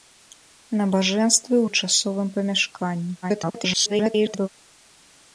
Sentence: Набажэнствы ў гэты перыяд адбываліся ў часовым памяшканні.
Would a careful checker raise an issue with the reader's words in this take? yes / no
yes